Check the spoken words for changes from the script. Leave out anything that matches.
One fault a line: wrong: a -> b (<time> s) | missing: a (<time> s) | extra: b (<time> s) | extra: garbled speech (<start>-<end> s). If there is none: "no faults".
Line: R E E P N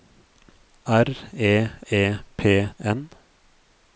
no faults